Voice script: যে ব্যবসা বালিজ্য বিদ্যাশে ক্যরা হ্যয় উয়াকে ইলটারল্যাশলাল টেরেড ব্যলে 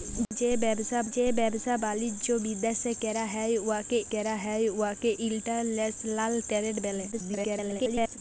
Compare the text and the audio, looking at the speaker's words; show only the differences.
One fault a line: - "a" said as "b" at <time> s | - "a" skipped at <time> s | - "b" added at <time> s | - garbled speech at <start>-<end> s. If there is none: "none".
- "যে ব্যবসা" added at 1.1 s
- "ক্যরা হ্যয় উয়াকে" added at 4.1 s
- garbled speech at 7.1-8.2 s